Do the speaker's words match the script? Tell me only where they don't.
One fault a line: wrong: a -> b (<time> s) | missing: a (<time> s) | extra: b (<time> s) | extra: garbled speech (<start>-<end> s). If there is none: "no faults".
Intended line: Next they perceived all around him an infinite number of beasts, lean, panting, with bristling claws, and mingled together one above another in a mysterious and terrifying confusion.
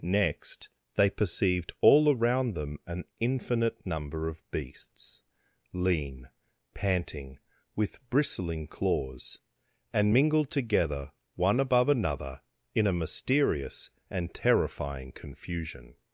wrong: him -> them (2.5 s)